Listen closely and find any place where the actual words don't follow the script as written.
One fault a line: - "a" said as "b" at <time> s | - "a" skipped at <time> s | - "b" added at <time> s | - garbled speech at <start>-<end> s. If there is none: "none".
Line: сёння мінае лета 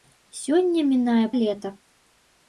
none